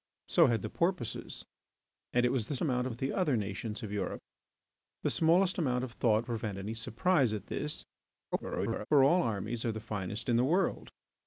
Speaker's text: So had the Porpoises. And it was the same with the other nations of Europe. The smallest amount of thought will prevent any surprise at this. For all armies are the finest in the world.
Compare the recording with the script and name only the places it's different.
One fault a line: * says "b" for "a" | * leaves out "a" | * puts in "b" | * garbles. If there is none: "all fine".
* says "amount" for "same"
* leaves out "will"
* garbles